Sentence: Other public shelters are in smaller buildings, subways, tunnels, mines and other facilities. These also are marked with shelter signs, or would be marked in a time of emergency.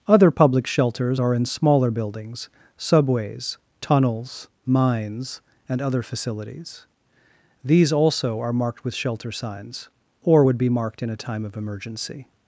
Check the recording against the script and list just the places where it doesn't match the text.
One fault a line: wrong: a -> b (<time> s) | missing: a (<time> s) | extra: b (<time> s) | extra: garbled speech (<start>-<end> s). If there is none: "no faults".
no faults